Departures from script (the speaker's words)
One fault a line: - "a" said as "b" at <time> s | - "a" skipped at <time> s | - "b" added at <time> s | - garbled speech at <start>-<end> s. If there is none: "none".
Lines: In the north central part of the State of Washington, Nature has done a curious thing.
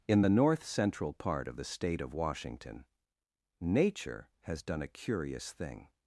none